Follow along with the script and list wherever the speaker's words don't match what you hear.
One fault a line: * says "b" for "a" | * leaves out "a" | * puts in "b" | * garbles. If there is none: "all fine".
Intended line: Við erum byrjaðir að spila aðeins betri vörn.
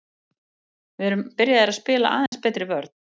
all fine